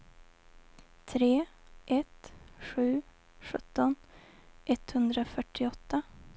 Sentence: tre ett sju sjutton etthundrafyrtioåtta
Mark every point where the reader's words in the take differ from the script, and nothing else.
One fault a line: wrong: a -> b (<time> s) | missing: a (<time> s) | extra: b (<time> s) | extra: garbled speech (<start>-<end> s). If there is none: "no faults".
no faults